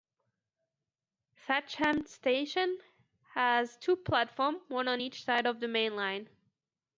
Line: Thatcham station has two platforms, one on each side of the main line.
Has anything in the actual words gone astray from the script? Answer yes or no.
no